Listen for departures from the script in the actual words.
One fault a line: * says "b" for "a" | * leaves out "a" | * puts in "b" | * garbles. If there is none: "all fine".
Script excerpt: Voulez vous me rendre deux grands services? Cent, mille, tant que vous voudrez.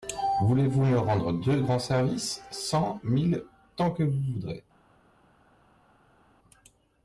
all fine